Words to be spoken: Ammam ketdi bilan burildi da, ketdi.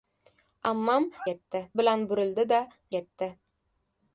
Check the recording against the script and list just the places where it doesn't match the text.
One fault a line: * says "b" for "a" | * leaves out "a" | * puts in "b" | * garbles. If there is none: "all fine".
all fine